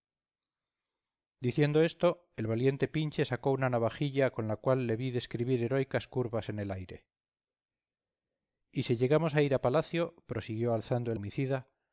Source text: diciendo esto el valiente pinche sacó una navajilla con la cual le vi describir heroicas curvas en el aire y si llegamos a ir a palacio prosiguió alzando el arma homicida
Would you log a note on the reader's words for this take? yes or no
yes